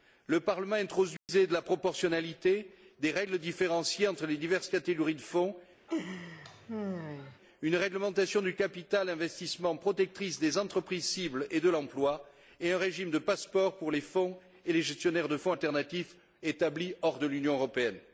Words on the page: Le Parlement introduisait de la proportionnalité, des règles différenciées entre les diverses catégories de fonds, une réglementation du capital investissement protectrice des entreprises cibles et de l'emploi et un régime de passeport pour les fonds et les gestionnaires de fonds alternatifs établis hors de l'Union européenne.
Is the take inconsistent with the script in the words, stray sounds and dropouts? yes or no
yes